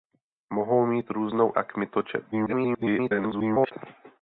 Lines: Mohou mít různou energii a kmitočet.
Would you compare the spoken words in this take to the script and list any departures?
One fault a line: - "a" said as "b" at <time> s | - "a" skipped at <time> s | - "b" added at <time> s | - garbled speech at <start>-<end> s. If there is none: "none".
- "energii" skipped at 1.5 s
- garbled speech at 2.3-3.7 s